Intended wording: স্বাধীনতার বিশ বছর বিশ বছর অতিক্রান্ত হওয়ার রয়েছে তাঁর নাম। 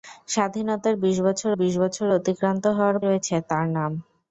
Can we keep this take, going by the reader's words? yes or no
yes